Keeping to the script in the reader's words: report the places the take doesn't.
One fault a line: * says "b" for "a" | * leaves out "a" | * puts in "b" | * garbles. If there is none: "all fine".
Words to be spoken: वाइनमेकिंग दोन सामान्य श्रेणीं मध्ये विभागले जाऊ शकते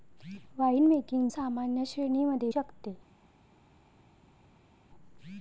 * leaves out "दोन"
* leaves out "विभागले जाऊ"